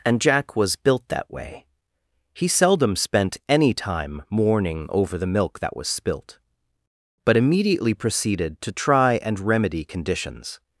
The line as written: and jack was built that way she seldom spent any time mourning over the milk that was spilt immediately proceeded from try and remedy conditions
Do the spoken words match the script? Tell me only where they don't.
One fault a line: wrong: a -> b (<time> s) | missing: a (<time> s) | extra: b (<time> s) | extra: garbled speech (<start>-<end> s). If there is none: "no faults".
wrong: she -> he (2.3 s)
extra: but (7.2 s)
wrong: from -> to (8.6 s)